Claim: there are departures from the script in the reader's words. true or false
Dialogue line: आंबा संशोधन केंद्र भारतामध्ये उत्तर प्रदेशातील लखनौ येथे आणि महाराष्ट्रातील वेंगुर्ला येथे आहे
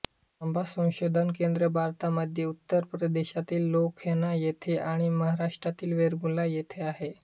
false